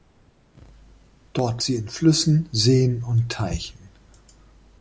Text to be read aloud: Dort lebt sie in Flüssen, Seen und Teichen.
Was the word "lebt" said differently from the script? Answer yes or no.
yes